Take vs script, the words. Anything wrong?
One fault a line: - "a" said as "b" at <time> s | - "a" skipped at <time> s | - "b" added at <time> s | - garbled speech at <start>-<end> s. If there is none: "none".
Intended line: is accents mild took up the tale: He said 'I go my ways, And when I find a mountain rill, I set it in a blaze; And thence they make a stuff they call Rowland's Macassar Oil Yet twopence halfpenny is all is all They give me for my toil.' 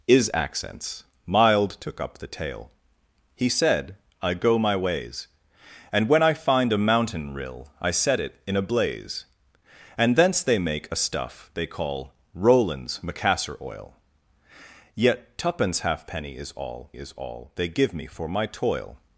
none